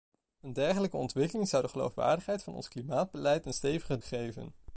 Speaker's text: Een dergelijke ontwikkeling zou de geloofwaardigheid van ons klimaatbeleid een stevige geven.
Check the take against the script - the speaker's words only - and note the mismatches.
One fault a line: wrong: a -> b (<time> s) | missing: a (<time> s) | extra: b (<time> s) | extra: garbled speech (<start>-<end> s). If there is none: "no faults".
no faults